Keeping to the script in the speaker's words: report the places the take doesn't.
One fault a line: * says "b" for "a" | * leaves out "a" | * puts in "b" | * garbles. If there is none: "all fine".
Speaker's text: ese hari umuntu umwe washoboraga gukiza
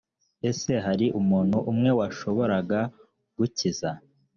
all fine